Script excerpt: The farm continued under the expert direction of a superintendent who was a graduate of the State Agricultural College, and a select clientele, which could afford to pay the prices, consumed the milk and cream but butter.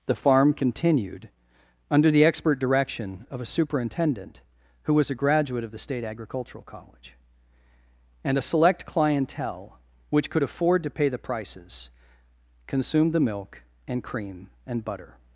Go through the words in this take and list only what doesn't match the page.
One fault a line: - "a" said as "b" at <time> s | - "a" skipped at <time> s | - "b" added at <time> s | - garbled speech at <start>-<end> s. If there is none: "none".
- "but" said as "and" at 14.7 s